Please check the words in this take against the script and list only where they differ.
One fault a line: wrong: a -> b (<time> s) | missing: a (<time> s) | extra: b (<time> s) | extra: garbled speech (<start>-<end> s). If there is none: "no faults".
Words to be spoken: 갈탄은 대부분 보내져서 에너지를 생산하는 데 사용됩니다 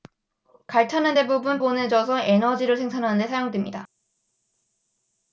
no faults